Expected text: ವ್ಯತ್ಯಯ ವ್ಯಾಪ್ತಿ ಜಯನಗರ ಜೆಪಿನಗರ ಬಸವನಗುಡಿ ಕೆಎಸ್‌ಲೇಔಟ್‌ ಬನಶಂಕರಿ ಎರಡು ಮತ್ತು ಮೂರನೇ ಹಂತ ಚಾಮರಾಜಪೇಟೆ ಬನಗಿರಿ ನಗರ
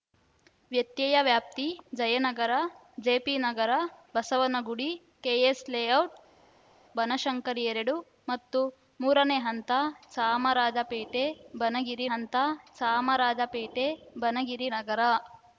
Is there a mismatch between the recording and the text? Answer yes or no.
yes